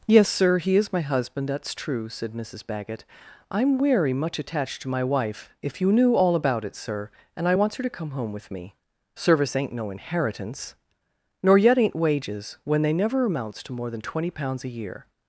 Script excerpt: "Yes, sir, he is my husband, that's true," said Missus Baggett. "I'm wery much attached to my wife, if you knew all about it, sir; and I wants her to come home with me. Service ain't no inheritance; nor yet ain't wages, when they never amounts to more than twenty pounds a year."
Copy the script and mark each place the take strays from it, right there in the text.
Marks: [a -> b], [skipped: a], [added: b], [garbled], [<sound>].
"Yes, sir, he is my husband, that's true," said Missus Baggett. "I'm wery much attached to my wife, if you knew all about it, sir; and I wants her to come home with me. Service ain't no inheritance; nor yet ain't wages, when they never amounts to more than twenty pounds a year."